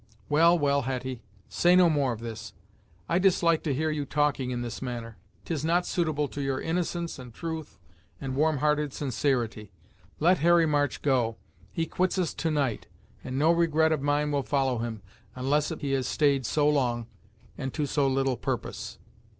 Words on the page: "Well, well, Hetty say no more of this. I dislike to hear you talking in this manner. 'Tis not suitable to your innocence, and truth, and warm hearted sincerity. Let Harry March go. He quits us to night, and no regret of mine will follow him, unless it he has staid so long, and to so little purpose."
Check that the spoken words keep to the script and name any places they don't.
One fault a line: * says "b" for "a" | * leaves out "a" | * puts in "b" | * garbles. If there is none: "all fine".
all fine